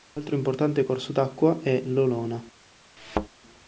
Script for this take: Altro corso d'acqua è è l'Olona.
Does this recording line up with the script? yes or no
no